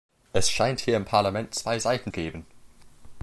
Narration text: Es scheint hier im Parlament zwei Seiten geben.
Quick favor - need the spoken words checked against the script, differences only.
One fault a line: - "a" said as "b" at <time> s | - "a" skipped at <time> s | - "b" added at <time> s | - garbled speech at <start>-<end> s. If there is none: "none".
none